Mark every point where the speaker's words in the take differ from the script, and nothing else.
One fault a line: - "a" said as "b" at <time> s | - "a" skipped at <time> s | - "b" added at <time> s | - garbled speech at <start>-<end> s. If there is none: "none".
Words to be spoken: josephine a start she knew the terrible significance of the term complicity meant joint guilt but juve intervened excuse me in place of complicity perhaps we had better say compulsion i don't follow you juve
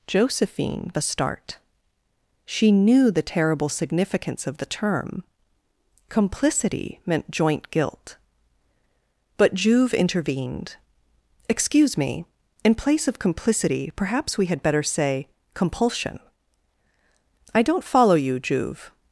none